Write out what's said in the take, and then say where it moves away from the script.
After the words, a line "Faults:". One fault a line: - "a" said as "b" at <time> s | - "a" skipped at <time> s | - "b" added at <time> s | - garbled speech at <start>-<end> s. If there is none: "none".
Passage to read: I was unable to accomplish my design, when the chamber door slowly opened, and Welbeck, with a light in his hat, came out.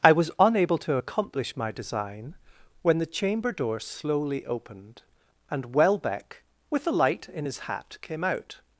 I was unable to accomplish my design, when the chamber door slowly opened, and Welbeck, with a light in his hat, came out.
Faults:
none